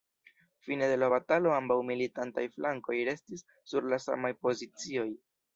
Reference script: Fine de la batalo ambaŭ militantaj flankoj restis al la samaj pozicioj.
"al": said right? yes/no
no